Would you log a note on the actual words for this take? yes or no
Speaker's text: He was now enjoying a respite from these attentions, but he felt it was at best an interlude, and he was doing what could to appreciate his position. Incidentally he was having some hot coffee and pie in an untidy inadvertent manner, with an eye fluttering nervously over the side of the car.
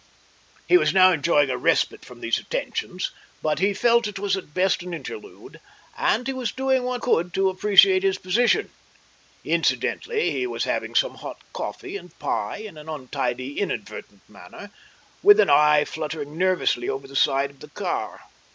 no